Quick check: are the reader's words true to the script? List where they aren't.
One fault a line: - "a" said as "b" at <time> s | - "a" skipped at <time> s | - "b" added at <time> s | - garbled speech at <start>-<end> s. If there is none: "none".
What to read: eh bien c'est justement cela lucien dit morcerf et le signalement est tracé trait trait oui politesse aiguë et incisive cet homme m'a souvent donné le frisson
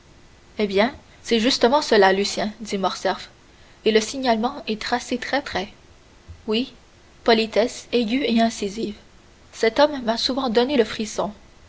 none